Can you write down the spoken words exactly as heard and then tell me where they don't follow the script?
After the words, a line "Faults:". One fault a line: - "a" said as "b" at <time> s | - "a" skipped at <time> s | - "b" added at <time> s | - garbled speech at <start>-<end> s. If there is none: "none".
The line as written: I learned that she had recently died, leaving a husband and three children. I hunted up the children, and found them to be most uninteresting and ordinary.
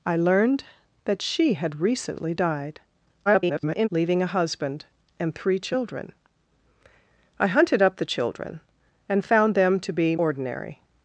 I learned that she had recently died, [garbled] leaving a husband and three children. I hunted up the children, and found them to be ordinary.
Faults:
- garbled speech at 3.3-3.9 s
- "most uninteresting and" skipped at 10.1 s